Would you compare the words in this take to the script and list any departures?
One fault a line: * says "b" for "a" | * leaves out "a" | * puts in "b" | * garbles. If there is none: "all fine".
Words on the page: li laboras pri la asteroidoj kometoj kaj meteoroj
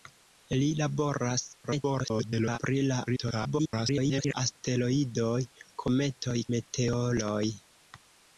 * garbles
* garbles
* leaves out "kaj"